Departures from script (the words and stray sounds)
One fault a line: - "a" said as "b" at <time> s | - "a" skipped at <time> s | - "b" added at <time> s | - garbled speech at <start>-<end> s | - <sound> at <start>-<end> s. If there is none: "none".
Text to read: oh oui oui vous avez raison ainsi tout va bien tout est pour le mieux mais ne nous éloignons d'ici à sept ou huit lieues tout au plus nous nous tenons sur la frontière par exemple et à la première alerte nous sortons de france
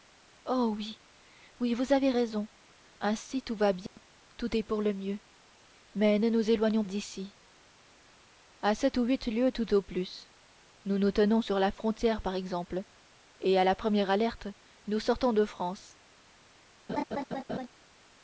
- dropout at 3.9-4.0 s
- laugh at 16.9-17.7 s